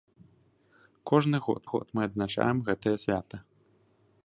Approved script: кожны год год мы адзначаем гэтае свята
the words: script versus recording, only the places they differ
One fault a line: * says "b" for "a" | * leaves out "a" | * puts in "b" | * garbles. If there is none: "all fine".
all fine